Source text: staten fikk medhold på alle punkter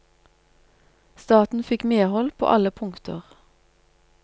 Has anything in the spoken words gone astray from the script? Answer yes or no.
no